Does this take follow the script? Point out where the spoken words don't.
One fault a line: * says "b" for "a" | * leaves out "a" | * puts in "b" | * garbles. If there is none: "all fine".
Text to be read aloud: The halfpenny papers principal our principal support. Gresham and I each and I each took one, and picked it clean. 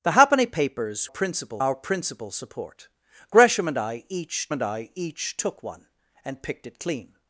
all fine